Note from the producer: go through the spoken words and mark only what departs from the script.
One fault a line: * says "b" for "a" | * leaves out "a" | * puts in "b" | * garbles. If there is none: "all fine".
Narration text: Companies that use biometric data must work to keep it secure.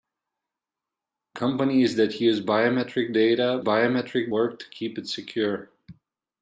* says "biometric" for "must"